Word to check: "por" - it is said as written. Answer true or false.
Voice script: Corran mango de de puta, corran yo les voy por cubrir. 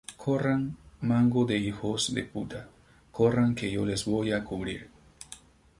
false